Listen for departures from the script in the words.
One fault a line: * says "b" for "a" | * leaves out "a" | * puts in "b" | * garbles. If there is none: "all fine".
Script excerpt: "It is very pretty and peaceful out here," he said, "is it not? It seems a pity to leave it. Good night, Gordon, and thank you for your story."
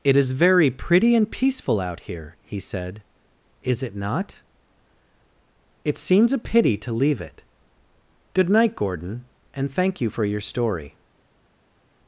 all fine